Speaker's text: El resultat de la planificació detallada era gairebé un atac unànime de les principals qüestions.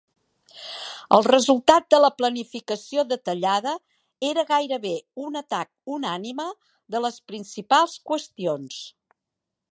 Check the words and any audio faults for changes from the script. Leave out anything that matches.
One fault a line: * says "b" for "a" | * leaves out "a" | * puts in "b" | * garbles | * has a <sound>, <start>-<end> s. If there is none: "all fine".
all fine